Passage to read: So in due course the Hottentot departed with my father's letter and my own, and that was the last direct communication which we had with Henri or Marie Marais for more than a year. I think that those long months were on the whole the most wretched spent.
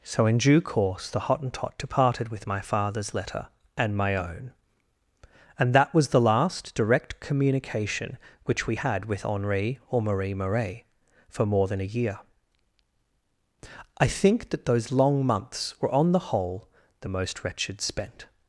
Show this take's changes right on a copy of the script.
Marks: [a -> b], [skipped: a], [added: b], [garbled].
So in due course the Hottentot departed with my father's letter and my own, and that was the last direct communication which we had with Henri or Marie Marais for more than a year. I think that those long months were on the whole the most wretched spent.